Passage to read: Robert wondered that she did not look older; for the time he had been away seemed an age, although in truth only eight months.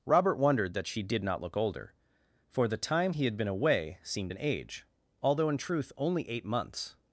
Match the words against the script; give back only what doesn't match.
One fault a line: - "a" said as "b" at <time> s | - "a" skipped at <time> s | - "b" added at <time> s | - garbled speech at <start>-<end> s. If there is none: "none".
none